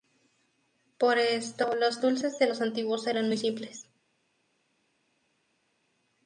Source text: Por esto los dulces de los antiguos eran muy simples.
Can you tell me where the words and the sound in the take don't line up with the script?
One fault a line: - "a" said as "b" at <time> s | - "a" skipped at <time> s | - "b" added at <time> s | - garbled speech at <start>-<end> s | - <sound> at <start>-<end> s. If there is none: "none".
none